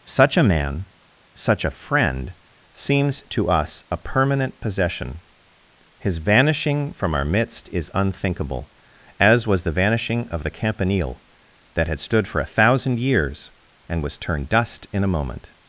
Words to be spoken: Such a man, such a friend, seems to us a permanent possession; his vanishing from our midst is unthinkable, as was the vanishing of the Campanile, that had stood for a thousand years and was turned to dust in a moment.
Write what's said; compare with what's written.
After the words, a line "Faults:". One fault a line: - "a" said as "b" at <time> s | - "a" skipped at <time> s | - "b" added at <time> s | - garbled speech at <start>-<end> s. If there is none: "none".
Such a man, such a friend, seems to us a permanent possession; his vanishing from our midst is unthinkable, as was the vanishing of the Campanile, that had stood for a thousand years and was turned dust in a moment.
Faults:
- "to" skipped at 14.5 s